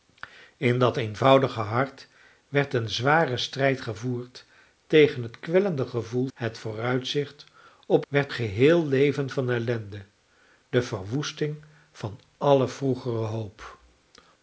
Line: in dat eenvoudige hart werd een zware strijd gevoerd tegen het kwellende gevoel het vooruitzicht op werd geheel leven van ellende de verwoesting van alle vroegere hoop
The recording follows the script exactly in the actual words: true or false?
true